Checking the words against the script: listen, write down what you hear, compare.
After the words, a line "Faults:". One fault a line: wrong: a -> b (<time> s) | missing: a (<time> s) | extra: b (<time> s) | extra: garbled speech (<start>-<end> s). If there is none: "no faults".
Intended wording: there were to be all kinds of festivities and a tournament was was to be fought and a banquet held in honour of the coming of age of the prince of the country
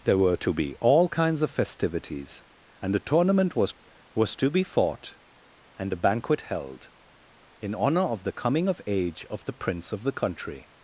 there were to be all kinds of festivities and a tournament was was to be fought and a banquet held in honour of the coming of age of the prince of the country
Faults:
no faults